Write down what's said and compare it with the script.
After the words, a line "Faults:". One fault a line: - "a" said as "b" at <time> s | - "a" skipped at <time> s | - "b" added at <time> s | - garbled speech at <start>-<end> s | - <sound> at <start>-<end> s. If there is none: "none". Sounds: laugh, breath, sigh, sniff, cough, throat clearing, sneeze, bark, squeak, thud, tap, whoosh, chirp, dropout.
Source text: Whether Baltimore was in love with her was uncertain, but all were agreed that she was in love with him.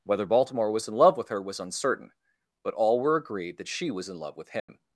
Whether Baltimore was in love with her was uncertain, but all were agreed that she was in love with him.
Faults:
- dropout at 4.6-4.7 s